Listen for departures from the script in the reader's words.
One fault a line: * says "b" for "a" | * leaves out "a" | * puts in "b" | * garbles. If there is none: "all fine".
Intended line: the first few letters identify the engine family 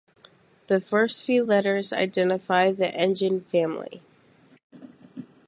all fine